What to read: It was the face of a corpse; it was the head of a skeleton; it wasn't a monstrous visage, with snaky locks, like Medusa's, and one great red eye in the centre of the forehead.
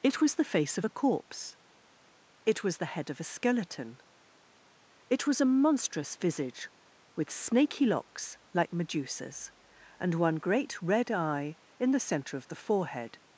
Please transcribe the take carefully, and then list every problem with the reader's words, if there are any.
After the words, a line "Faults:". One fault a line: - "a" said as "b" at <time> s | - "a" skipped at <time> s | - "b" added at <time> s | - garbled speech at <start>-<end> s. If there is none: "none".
It was the face of a corpse; it was the head of a skeleton; it was a monstrous visage, with snaky locks, like Medusa's, and one great red eye in the centre of the forehead.
Faults:
- "wasn't" said as "was" at 5.3 s